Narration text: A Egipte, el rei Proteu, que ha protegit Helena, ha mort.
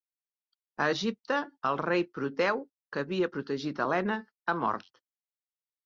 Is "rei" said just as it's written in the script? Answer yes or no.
yes